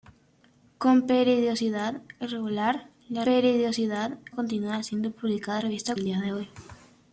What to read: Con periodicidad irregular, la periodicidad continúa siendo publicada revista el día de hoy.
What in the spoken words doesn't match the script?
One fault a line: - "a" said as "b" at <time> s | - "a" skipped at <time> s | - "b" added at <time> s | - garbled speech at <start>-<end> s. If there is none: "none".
none